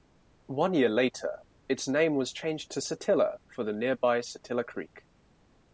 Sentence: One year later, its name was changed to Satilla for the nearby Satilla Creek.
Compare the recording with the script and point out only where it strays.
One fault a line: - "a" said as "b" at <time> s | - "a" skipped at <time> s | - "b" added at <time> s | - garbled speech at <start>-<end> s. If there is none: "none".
none